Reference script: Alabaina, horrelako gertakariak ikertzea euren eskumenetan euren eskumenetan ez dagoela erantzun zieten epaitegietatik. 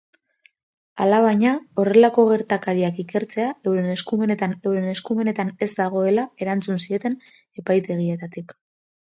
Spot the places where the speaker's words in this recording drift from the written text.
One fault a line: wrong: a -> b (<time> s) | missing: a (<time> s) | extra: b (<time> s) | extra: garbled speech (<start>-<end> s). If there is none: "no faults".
no faults